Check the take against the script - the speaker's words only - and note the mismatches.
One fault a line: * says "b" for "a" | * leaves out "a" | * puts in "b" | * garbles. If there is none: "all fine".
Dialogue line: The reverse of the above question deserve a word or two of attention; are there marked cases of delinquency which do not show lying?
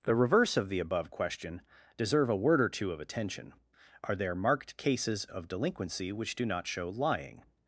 all fine